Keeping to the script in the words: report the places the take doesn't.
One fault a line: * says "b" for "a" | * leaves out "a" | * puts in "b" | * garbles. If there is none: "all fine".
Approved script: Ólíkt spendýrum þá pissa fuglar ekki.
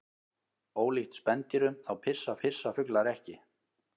* puts in "pissa"